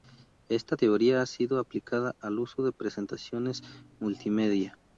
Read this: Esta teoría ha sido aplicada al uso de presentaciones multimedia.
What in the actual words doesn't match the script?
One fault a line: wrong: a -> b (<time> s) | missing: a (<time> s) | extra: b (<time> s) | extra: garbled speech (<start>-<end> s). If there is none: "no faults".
no faults